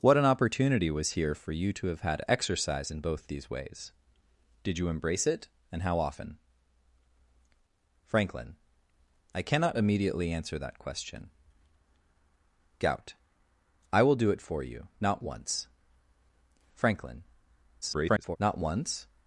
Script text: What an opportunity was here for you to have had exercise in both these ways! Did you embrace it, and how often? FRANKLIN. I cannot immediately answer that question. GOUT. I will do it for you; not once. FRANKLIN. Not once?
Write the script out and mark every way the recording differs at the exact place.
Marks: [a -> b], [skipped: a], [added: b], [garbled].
What an opportunity was here for you to have had exercise in both these ways! Did you embrace it, and how often? FRANKLIN. I cannot immediately answer that question. GOUT. I will do it for you; not once. FRANKLIN. [garbled] Not once?